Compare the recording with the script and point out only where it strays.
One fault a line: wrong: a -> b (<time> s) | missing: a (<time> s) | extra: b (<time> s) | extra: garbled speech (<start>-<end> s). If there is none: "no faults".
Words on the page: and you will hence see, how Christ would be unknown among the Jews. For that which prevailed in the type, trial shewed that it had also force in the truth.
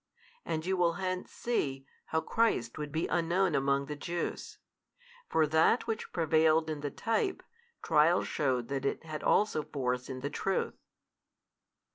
no faults